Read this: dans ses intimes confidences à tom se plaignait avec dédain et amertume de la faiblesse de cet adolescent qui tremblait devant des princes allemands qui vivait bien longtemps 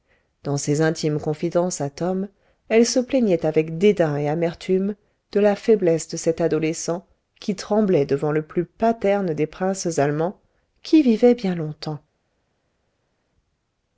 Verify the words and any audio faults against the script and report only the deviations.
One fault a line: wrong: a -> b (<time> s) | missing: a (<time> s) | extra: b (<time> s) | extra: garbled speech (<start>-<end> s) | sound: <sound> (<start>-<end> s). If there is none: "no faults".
extra: elle (2.7 s)
extra: le plus paterne (8.3 s)